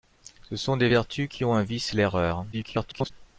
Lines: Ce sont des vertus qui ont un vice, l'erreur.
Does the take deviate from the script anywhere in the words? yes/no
yes